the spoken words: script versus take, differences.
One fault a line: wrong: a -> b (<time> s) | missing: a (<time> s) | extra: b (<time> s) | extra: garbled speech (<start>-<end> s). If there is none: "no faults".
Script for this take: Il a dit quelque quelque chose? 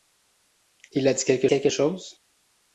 no faults